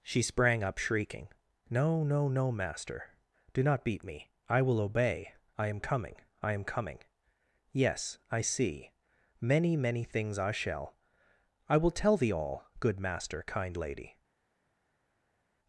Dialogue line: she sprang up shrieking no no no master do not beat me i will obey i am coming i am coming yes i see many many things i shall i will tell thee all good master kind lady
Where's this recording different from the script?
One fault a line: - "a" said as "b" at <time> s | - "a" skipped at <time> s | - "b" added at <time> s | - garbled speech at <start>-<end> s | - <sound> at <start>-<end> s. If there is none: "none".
none